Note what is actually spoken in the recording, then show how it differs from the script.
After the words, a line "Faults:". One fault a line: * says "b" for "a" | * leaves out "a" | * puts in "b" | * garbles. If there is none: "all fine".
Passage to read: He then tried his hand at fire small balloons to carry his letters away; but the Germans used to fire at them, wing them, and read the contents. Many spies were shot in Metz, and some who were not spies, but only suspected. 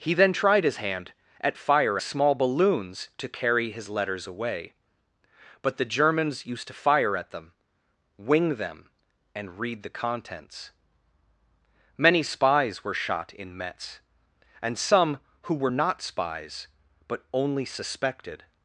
He then tried his hand at fire small balloons to carry his letters away; but the Germans used to fire at them, wing them, and read the contents. Many spies were shot in Metz, and some who were not spies, but only suspected.
Faults:
all fine